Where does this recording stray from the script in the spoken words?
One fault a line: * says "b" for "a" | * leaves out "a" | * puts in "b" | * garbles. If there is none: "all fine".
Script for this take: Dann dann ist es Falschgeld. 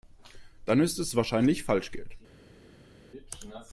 * leaves out "dann"
* puts in "wahrscheinlich"